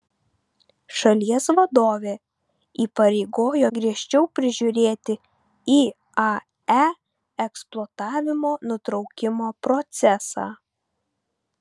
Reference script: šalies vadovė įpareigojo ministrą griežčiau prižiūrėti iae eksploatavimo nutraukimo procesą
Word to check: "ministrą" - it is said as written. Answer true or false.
false